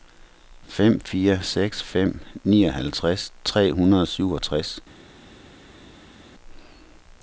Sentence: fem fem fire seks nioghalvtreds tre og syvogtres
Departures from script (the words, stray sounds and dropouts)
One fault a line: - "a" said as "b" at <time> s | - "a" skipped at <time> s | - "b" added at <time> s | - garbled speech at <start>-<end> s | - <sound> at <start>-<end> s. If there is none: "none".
- "fem" skipped at 1.0 s
- "fem" added at 1.8 s
- "hundrede" added at 3.7 s